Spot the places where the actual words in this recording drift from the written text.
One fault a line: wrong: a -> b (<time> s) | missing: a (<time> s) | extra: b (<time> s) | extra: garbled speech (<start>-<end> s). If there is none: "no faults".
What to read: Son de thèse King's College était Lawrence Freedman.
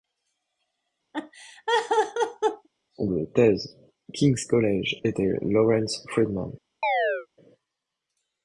no faults